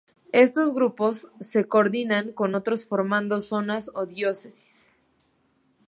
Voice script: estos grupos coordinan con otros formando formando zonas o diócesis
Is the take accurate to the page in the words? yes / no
no